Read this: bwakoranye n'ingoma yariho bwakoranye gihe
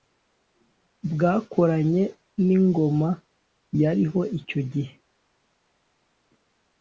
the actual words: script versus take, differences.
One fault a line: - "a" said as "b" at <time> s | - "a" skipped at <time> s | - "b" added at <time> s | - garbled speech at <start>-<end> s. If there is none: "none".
- "bwakoranye" said as "icyo" at 4.4 s